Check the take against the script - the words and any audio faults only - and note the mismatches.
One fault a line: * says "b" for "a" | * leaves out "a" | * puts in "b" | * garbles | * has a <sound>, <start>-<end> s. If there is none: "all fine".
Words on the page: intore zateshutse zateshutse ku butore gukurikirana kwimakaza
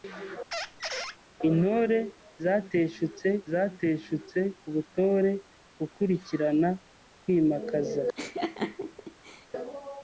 * has a squeak, 0.5-1.2 s
* has a laugh, 8.2-9.5 s